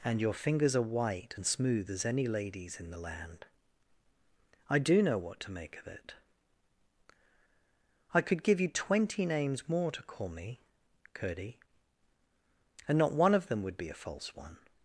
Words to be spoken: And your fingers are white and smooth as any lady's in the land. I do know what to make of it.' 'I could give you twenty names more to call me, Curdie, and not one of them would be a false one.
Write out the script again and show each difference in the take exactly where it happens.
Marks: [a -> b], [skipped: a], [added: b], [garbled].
And your fingers are white and smooth as any lady's in the land. I do know what to make of it.' 'I could give you twenty names more to call me, Curdie, and not one of them would be a false one.